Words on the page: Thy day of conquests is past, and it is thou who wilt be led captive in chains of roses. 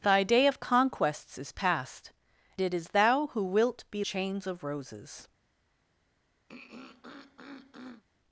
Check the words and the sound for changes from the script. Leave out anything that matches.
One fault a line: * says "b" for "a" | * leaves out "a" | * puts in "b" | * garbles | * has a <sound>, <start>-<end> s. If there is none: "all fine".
* leaves out "and"
* leaves out "led captive in"
* has a throat clearing, 6.5-8.0 s